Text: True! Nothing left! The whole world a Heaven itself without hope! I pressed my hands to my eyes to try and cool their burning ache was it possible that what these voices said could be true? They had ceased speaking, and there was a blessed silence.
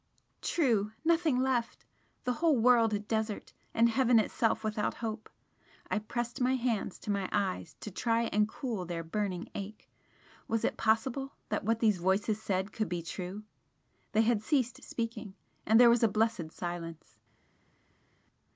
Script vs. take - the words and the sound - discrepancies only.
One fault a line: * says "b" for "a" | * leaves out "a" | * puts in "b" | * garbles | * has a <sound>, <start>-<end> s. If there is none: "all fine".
* puts in "desert and"